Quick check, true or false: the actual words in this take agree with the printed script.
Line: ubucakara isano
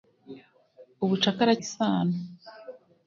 true